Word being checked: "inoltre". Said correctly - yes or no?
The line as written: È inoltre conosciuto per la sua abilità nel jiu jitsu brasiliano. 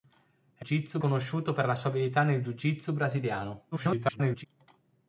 no